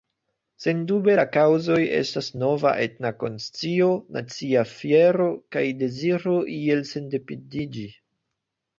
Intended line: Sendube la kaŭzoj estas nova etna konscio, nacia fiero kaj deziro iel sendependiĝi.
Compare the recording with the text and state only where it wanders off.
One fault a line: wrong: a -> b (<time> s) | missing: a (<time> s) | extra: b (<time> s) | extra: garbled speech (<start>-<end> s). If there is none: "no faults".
no faults